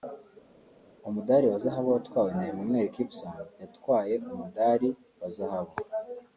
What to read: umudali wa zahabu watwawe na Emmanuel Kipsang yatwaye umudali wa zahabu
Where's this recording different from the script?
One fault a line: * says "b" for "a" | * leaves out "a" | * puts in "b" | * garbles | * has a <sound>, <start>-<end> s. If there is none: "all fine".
all fine